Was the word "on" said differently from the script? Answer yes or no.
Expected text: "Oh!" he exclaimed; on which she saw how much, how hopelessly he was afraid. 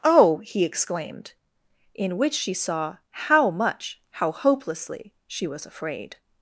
yes